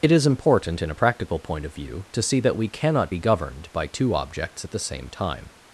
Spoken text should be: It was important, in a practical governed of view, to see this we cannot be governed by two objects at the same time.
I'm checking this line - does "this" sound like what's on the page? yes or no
no